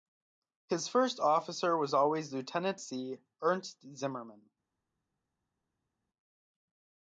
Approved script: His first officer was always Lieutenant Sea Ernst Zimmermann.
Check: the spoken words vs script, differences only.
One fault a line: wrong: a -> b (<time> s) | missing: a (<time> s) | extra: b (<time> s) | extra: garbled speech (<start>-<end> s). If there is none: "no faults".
no faults